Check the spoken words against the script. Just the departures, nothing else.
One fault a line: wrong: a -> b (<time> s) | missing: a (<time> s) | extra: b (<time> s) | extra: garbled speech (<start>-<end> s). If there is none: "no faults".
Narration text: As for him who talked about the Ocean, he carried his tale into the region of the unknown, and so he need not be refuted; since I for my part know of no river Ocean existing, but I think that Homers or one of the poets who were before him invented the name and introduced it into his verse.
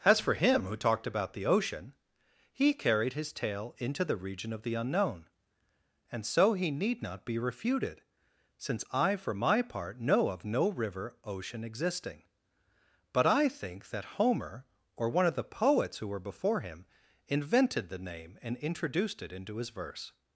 wrong: Homers -> Homer (14.2 s)